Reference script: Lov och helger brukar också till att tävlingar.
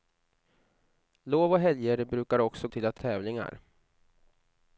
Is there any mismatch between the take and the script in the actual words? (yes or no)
no